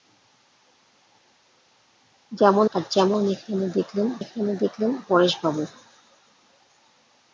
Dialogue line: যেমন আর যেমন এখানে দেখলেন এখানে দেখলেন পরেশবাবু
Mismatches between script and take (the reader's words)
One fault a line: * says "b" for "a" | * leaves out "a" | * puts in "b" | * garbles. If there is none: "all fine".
all fine